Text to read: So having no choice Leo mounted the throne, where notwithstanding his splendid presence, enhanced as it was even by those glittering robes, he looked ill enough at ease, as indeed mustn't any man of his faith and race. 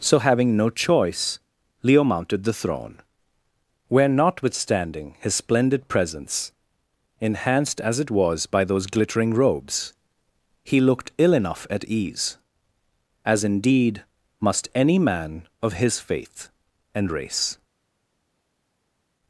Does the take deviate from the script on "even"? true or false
true